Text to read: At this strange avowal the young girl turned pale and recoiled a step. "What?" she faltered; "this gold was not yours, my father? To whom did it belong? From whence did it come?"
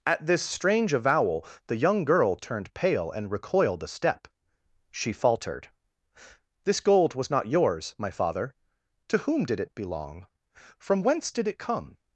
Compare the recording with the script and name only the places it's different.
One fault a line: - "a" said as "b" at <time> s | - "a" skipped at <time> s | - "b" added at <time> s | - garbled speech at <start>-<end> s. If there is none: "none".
- "What" skipped at 4.3 s